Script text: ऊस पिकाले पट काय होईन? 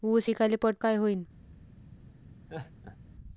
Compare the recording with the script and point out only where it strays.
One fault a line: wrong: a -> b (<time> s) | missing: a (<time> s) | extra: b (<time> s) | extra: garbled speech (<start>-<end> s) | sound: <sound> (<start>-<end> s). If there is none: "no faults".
sound: laugh (2.5-3.0 s)